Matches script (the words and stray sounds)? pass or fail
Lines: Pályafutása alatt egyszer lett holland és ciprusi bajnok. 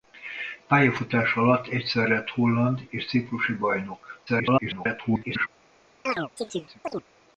fail